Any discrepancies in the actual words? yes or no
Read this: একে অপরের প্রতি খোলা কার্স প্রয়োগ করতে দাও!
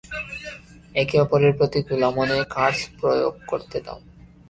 yes